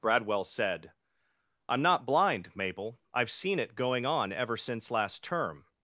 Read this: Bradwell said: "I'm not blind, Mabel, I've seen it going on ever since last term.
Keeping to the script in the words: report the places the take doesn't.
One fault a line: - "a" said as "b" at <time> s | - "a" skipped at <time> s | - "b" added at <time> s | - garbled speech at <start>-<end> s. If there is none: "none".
none